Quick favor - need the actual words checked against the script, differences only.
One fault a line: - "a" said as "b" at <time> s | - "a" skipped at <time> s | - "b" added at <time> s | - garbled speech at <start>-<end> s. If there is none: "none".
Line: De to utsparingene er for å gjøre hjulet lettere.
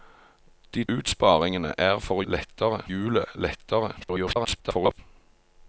- "to" skipped at 0.8 s
- "gjøre" said as "lettere" at 2.2 s
- garbled speech at 4.0-5.0 s